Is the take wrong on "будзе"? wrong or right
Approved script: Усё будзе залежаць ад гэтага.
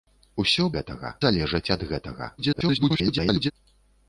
wrong